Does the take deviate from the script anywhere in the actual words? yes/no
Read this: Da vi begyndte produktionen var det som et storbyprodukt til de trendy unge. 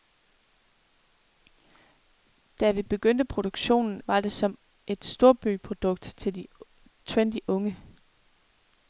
no